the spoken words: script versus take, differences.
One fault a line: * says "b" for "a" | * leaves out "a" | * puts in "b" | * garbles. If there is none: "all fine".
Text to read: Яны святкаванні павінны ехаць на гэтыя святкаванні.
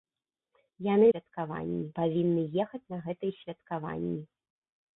all fine